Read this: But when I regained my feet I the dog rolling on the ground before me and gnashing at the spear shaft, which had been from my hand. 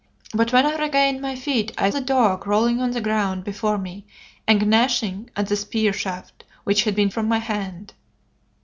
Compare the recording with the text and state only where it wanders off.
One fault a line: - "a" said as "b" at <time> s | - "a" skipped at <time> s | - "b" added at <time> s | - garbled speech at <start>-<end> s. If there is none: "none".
none